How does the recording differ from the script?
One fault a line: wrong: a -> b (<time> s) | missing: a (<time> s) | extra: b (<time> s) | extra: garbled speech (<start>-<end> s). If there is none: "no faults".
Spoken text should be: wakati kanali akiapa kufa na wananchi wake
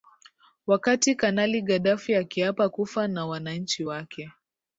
extra: gaddafi (1.6 s)